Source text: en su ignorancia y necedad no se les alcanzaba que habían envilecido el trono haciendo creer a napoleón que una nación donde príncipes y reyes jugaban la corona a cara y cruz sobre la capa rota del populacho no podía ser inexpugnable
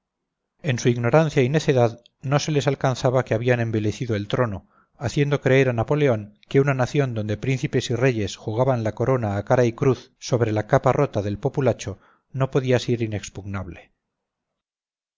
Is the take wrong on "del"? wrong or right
right